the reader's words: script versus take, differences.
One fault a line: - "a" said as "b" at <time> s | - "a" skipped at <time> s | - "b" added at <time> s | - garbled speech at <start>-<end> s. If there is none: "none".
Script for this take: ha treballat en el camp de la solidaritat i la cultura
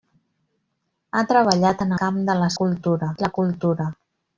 - "el" skipped at 2.0 s
- "solidaritat" said as "cultura" at 2.6 s